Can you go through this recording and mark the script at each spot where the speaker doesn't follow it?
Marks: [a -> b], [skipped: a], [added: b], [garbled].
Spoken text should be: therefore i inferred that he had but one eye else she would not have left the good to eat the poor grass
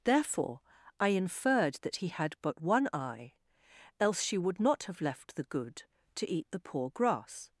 therefore i inferred that he had but one eye else she would not have left the good to eat the poor grass